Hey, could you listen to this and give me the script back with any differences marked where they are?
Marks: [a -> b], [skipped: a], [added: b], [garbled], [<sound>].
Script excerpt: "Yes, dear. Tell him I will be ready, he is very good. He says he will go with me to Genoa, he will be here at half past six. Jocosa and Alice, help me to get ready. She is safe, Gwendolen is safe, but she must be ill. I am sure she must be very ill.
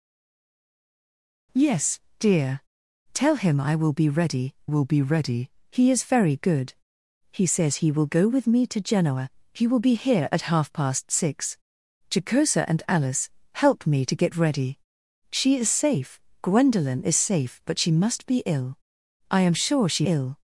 "Yes, dear. Tell him I will be ready, [added: will be ready] he is very good. He says he will go with me to Genoa, he will be here at half past six. Jocosa and Alice, help me to get ready. She is safe, Gwendolen is safe, but she must be ill. I am sure she [skipped: must be very] ill.